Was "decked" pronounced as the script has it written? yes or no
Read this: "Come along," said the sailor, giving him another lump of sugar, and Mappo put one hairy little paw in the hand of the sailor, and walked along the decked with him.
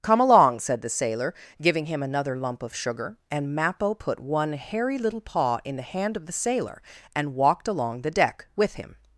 no